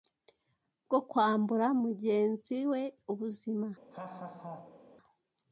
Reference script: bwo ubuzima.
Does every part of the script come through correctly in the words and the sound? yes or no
no